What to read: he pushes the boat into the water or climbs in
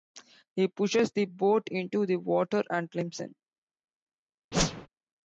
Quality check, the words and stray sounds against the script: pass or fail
fail